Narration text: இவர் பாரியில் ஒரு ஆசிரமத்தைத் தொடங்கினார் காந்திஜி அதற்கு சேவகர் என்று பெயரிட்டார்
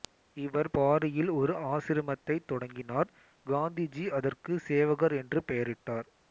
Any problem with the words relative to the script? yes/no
no